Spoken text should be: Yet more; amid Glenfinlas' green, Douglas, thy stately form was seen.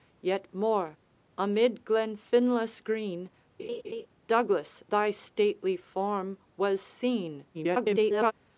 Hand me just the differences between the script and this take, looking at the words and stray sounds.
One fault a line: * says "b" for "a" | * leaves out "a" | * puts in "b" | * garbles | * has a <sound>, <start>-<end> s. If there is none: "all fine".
* has a laugh, 3.6-4.1 s
* garbles